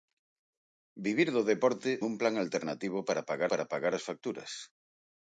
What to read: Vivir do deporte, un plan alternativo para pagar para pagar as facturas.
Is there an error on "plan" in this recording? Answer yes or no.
no